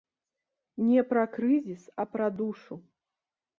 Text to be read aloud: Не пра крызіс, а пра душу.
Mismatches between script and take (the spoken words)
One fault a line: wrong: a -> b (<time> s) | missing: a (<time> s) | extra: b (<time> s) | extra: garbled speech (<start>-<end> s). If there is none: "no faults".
no faults